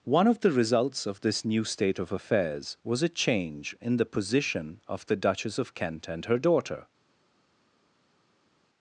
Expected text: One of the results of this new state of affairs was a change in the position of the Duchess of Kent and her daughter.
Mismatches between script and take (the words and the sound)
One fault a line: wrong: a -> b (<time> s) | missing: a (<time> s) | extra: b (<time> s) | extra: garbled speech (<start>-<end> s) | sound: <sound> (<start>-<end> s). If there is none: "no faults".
no faults